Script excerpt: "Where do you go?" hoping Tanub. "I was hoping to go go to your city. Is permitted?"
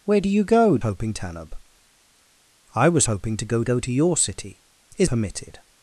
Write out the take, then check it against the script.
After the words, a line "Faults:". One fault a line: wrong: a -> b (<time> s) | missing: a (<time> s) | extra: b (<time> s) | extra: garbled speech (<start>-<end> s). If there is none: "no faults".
"Where do you go?" hoping Tanub. "I was hoping to go go to your city. Is permitted?"
Faults:
no faults